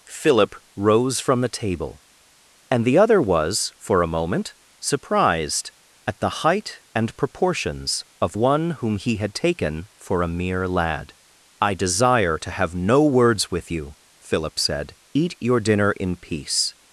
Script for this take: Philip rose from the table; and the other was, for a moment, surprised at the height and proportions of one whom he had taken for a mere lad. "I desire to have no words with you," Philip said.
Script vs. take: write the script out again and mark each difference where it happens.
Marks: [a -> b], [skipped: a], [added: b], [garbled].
Philip rose from the table; and the other was, for a moment, surprised at the height and proportions of one whom he had taken for a mere lad. "I desire to have no words with you," Philip said. [added: Eat your dinner in peace]